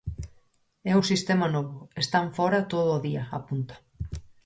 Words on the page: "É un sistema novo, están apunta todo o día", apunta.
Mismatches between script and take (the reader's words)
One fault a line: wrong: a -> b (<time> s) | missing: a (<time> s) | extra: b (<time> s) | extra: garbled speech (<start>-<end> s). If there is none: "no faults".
wrong: apunta -> fóra (2.4 s)